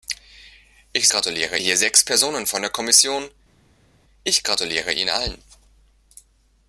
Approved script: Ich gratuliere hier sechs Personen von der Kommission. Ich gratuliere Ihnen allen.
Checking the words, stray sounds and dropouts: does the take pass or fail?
pass